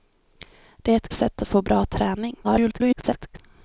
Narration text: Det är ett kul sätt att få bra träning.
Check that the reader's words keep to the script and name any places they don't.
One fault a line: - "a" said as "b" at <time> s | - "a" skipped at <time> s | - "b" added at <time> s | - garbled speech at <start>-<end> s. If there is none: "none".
- "kul" skipped at 1.1 s
- garbled speech at 2.4-3.4 s